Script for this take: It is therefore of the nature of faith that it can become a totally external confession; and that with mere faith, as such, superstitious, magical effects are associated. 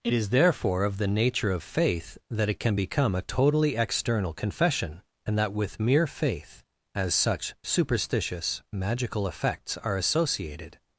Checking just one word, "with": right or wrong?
right